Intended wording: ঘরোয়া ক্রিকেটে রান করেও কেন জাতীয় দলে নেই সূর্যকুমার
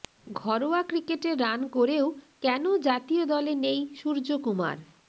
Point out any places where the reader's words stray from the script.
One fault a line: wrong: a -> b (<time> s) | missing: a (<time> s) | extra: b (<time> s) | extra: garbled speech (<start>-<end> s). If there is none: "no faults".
no faults